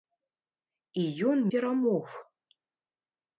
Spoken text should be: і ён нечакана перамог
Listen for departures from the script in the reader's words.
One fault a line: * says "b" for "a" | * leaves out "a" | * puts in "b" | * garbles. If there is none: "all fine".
* leaves out "нечакана"